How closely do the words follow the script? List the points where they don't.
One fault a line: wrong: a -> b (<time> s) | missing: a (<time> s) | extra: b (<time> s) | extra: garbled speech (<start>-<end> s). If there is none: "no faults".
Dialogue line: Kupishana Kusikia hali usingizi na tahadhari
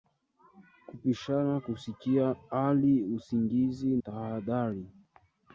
missing: na (4.0 s)